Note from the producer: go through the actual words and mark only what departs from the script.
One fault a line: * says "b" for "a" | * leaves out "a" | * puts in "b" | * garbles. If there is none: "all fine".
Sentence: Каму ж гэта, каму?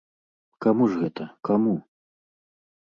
all fine